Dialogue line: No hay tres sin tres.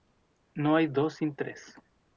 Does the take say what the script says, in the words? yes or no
no